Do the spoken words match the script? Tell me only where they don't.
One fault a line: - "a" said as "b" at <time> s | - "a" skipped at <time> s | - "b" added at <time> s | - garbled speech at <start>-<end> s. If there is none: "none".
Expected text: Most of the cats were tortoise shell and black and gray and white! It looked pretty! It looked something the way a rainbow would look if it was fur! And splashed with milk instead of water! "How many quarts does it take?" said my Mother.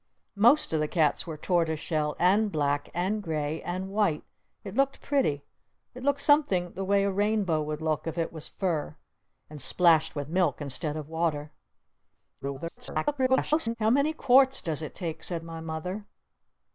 - garbled speech at 12.4-13.8 s